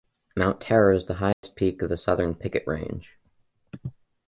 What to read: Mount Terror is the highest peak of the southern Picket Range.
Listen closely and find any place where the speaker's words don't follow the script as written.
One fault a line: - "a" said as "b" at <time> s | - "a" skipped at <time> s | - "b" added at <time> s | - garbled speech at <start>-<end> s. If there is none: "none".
none